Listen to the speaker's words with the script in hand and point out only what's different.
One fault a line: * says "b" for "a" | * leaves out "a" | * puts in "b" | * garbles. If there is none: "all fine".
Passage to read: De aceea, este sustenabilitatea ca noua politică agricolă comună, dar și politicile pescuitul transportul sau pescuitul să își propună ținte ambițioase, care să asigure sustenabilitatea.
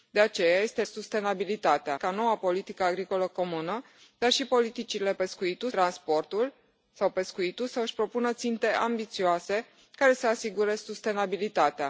all fine